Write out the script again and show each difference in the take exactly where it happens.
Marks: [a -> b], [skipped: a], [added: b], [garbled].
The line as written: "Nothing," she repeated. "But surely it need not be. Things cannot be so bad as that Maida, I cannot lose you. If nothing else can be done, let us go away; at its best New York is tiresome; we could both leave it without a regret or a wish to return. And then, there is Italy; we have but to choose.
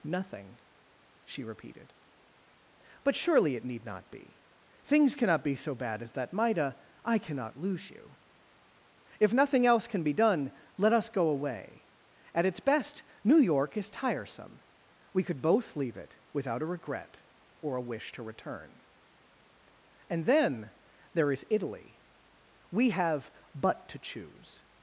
"Nothing," she repeated. "But surely it need not be. Things cannot be so bad as that Maida, I cannot lose you. If nothing else can be done, let us go away; at its best New York is tiresome; we could both leave it without a regret or a wish to return. And then, there is Italy; we have but to choose.